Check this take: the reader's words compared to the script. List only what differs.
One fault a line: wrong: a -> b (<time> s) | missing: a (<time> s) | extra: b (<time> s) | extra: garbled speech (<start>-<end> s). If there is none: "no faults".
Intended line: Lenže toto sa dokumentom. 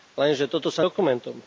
no faults